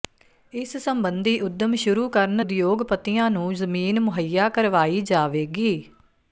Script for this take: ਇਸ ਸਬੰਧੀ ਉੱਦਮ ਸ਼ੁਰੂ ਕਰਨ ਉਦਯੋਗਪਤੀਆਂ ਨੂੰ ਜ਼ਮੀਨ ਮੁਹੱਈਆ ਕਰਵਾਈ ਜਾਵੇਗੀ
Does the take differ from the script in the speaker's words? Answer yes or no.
no